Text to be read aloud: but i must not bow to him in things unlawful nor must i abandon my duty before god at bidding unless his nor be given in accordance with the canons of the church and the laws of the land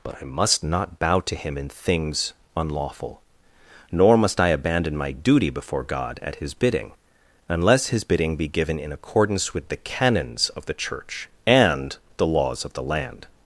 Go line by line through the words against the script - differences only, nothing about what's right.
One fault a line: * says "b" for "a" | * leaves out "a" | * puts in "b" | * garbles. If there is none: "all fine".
* puts in "his"
* says "bidding" for "nor"